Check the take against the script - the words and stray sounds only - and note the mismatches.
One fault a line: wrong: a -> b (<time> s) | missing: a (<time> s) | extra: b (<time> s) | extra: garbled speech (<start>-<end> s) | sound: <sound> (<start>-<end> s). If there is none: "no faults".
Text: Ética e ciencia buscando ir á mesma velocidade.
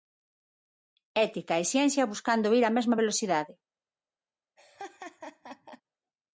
sound: laugh (4.6-5.8 s)